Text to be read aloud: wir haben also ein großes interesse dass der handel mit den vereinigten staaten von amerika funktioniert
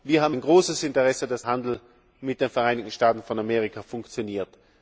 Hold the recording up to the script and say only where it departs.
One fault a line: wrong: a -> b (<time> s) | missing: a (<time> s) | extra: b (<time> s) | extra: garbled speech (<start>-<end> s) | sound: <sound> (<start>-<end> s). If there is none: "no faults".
missing: also (0.3 s)
missing: der (1.4 s)